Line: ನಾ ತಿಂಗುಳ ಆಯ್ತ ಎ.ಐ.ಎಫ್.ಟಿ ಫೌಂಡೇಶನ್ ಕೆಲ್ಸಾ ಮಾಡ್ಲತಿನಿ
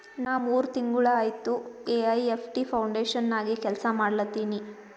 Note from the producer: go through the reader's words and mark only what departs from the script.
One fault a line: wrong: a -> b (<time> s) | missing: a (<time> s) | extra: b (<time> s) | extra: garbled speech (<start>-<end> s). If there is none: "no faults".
extra: ಮೂರ್ (0.4 s)
extra: ನಾಗೆ (3.3 s)